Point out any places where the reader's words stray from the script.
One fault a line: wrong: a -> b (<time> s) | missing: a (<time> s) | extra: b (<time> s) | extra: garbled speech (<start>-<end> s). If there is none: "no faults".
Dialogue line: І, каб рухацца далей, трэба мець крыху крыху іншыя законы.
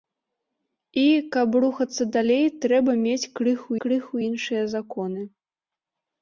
no faults